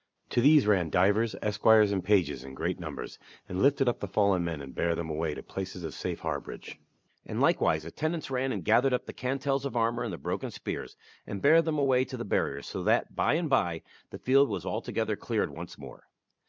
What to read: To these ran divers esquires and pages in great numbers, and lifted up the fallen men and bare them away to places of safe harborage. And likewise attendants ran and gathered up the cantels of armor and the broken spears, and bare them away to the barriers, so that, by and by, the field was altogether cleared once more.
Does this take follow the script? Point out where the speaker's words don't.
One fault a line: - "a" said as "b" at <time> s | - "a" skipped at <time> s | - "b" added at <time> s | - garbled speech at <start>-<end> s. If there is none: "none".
none